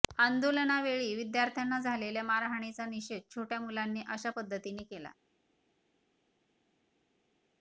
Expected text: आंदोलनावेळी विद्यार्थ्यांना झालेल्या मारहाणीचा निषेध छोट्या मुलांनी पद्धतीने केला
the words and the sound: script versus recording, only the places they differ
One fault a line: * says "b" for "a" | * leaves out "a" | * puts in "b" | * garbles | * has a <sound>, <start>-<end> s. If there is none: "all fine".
* puts in "अशा"